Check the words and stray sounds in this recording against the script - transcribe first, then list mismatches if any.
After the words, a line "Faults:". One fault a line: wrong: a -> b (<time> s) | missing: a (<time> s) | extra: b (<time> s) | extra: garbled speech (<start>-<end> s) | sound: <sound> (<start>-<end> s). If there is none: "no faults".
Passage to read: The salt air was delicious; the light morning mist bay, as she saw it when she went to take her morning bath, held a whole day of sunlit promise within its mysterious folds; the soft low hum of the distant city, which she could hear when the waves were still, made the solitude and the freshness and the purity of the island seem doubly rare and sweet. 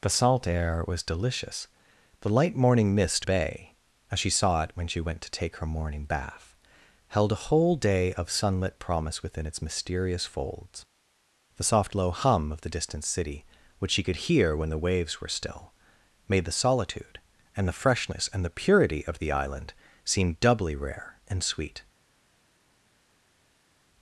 The salt air was delicious; the light morning mist bay, as she saw it when she went to take her morning bath, held a whole day of sunlit promise within its mysterious folds; the soft low hum of the distant city, which she could hear when the waves were still, made the solitude and the freshness and the purity of the island seem doubly rare and sweet.
Faults:
no faults